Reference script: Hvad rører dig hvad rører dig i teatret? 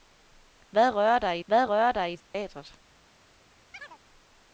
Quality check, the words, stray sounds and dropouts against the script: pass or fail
fail